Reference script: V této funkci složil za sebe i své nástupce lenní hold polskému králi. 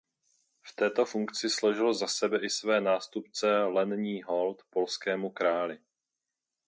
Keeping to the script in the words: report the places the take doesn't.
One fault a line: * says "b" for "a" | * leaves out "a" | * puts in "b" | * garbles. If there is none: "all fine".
all fine